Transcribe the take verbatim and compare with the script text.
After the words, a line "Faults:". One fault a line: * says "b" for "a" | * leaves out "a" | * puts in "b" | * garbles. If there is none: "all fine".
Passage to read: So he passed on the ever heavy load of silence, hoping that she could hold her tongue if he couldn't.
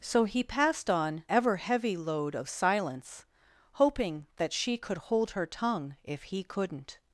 So he passed on ever heavy load of silence, hoping that she could hold her tongue if he couldn't.
Faults:
* leaves out "the"